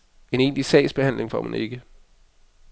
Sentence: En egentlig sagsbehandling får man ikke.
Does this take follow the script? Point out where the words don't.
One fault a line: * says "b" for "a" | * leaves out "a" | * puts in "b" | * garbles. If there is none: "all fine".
all fine